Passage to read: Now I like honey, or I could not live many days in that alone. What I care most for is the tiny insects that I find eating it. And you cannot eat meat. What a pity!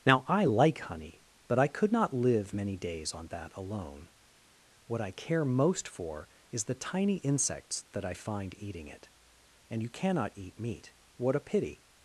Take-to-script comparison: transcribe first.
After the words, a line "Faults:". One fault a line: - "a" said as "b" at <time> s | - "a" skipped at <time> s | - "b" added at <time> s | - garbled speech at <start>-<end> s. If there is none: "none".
Now I like honey, but I could not live many days on that alone. What I care most for is the tiny insects that I find eating it. And you cannot eat meat. What a pity!
Faults:
- "or" said as "but" at 1.5 s
- "in" said as "on" at 3.1 s